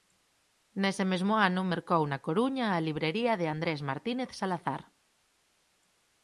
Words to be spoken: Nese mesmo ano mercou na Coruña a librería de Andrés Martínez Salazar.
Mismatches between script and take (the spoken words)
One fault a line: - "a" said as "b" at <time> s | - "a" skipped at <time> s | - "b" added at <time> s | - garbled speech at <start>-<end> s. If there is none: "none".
none